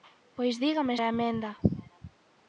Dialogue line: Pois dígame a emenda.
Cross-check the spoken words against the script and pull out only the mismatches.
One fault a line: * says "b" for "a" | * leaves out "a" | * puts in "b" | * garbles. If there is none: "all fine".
all fine